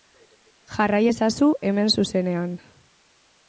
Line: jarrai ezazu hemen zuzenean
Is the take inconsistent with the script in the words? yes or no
no